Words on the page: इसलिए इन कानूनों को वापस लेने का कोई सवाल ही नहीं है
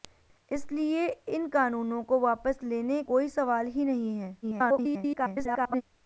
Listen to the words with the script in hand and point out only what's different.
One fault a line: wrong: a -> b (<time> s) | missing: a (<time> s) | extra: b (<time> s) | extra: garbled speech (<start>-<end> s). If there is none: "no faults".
missing: का (3.0 s)
extra: garbled speech (4.4-5.8 s)